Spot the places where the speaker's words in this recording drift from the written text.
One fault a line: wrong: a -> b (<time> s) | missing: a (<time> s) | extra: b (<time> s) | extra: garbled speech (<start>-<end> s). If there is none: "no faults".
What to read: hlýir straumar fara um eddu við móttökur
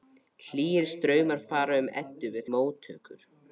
no faults